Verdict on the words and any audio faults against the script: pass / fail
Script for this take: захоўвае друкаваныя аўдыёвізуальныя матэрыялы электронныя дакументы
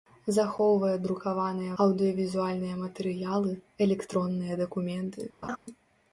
fail